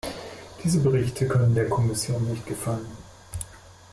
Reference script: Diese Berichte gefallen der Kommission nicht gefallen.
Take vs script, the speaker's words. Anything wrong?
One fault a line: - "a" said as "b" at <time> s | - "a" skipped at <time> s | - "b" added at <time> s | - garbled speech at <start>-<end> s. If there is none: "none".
- "gefallen" said as "können" at 1.3 s